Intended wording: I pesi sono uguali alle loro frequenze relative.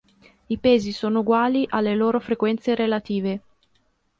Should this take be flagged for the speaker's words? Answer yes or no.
no